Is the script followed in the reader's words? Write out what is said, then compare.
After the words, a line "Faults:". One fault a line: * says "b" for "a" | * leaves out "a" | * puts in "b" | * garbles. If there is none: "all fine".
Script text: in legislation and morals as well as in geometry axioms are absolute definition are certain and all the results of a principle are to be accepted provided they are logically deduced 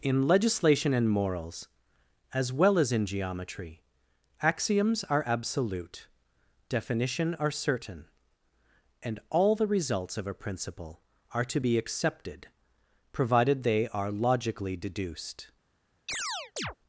in legislation and morals as well as in geometry axioms are absolute definition are certain and all the results of a principle are to be accepted provided they are logically deduced
Faults:
all fine